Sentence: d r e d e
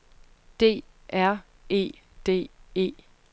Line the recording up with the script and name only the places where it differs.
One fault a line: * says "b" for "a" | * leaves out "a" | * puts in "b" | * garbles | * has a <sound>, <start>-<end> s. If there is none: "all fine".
all fine